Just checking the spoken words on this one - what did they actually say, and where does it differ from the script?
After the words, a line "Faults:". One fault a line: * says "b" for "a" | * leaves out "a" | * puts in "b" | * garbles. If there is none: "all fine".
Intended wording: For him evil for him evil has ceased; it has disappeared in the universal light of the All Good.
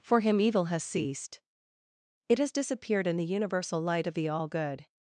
For him evil has ceased; it has disappeared in the universal light of the All Good.
Faults:
* leaves out "for him evil"